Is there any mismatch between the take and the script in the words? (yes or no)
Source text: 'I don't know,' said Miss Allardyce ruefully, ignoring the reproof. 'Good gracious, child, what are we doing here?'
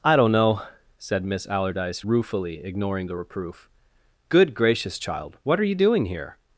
yes